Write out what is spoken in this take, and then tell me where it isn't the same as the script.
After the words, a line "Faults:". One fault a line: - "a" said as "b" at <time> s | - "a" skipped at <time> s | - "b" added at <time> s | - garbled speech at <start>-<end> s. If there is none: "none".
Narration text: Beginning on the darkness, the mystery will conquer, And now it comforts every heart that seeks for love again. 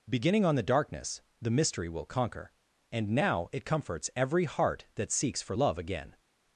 Beginning on the darkness, the mystery will conquer, And now it comforts every heart that seeks for love again.
Faults:
none